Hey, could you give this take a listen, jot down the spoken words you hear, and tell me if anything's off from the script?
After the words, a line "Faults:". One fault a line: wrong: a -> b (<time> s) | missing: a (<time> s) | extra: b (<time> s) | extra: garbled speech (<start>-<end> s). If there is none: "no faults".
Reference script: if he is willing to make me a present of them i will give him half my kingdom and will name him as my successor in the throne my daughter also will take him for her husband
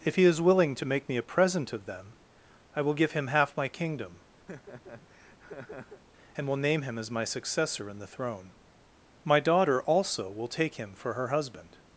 if he is willing to make me a present of them i will give him half my kingdom and will name him as my successor in the throne my daughter also will take him for her husband
Faults:
no faults